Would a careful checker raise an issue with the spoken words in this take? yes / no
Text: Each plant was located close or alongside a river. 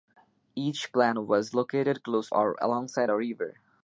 no